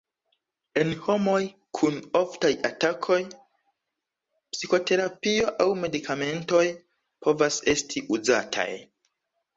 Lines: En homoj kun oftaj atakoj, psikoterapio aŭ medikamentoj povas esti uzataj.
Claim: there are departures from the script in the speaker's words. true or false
false